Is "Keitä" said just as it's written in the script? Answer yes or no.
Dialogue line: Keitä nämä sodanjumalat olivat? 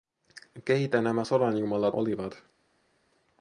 yes